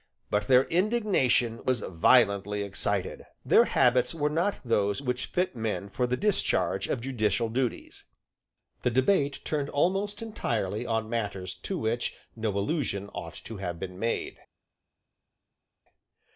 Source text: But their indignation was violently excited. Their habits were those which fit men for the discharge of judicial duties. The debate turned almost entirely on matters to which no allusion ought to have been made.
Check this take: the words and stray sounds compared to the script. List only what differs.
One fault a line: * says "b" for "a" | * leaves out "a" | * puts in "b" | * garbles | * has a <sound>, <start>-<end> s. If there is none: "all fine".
* puts in "not"